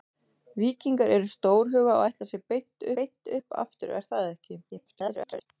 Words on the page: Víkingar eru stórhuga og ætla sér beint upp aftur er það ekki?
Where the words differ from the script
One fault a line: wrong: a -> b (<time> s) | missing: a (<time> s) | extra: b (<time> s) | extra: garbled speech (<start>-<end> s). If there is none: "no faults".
extra: beint (3.0 s)
extra: garbled speech (4.7-5.5 s)